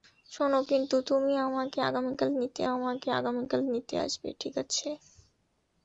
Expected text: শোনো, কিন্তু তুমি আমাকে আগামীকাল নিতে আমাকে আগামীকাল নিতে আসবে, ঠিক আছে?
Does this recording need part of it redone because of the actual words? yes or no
no